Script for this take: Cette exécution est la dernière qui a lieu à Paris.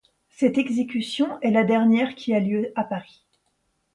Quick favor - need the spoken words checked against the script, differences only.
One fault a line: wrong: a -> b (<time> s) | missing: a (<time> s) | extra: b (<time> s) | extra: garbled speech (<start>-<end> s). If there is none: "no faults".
no faults